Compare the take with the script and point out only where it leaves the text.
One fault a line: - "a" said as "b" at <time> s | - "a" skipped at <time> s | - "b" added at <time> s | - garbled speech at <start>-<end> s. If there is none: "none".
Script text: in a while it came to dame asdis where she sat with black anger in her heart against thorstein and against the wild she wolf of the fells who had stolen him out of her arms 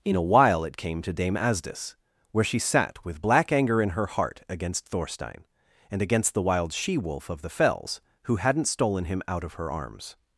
- "had" said as "hadn't" at 8.4 s